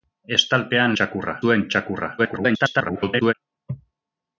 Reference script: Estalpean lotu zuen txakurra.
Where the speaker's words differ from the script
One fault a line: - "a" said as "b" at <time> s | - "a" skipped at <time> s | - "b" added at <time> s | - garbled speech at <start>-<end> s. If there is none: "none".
- "lotu" said as "txakurra" at 1.0 s
- garbled speech at 2.2-3.3 s